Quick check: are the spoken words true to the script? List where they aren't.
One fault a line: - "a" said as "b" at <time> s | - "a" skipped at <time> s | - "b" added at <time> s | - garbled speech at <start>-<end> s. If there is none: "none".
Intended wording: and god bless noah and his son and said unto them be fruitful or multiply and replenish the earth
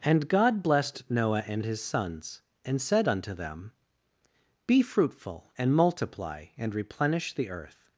- "bless" said as "blessed" at 0.6 s
- "son" said as "sons" at 1.8 s
- "or" said as "and" at 5.6 s